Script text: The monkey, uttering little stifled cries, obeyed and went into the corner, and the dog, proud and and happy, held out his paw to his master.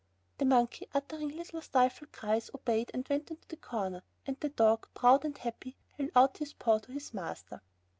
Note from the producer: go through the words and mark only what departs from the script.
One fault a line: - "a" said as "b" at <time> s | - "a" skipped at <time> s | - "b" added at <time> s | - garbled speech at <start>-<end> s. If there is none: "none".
- "and" skipped at 5.4 s